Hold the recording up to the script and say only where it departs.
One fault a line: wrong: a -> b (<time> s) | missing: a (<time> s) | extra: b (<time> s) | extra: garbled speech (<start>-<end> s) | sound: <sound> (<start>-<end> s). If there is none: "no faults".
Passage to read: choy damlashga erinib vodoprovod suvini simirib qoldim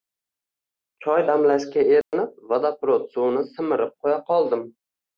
sound: dropout (2.0-2.1 s)
extra: qo`ya (4.1 s)